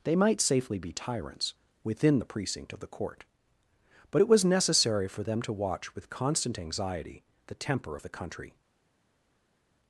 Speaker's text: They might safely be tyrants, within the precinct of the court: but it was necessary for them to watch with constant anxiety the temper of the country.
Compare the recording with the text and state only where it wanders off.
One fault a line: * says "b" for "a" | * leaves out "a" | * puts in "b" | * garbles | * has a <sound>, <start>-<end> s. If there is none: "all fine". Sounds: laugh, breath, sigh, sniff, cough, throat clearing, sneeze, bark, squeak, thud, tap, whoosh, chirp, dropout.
all fine